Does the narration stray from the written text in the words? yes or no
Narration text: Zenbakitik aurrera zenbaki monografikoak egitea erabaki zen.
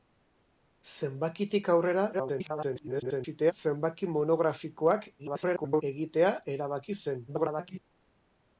yes